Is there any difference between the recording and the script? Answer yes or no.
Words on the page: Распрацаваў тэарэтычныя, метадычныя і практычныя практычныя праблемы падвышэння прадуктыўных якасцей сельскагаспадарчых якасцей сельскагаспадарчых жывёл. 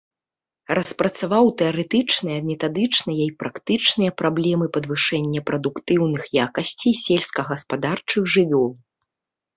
yes